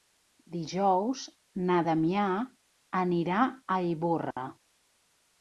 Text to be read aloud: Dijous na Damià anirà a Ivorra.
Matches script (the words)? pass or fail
pass